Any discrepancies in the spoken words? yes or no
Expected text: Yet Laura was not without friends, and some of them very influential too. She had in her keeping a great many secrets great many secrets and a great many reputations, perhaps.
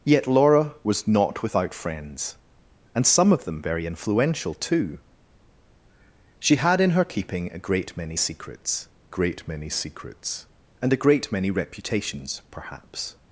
no